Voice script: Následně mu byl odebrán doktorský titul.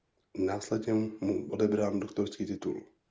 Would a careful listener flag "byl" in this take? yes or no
yes